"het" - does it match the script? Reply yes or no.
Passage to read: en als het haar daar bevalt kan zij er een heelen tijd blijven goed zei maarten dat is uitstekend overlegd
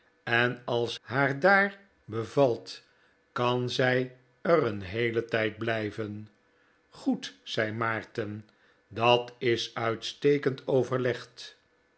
no